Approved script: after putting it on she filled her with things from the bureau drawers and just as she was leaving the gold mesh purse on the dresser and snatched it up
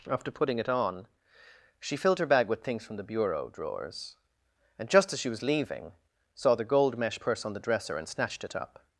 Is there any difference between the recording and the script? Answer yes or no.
yes